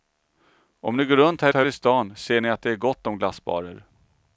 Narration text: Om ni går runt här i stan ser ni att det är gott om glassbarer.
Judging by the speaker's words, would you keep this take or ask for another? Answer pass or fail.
fail